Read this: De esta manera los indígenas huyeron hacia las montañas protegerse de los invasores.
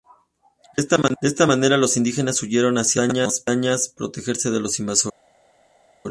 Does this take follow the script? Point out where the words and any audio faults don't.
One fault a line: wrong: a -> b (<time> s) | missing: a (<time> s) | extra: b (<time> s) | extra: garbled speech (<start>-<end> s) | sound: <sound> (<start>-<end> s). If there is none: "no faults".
no faults